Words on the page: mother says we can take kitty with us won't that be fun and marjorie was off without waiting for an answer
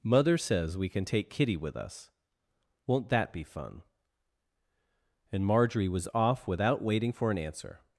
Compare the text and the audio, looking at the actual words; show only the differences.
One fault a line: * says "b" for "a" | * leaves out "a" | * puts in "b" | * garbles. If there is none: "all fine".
all fine